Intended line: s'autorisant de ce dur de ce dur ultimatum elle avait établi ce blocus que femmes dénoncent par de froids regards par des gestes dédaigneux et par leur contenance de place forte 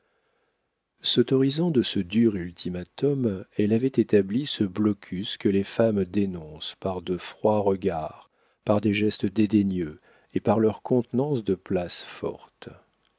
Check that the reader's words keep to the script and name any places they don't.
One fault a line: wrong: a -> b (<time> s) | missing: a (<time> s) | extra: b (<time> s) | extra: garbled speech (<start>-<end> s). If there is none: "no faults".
missing: de ce dur (2.4 s)
extra: les (5.5 s)